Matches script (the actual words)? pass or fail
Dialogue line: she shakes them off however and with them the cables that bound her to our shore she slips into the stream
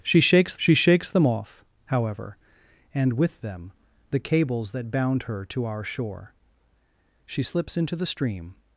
fail